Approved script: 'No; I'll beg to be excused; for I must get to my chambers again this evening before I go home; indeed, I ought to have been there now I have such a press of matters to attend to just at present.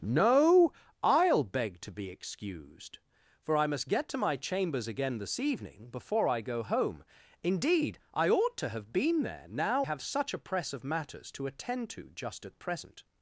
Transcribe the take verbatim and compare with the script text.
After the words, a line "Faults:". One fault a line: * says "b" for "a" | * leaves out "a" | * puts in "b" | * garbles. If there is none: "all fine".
'No; I'll beg to be excused; for I must get to my chambers again this evening before I go home; indeed, I ought to have been there now have such a press of matters to attend to just at present.
Faults:
* leaves out "I"